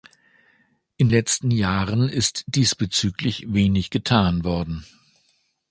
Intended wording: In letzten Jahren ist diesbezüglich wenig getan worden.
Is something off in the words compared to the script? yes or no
no